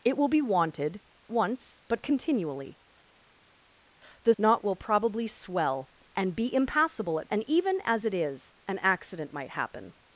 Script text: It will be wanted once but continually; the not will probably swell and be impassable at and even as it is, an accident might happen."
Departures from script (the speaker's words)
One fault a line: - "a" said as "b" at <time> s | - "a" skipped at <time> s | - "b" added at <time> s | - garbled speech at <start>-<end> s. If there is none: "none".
none